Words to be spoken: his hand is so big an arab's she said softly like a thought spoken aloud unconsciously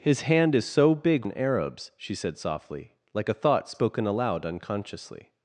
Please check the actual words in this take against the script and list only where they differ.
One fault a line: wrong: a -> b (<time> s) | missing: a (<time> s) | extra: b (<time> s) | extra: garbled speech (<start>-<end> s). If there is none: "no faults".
no faults